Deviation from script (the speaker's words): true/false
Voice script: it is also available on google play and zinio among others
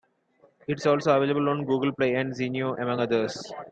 false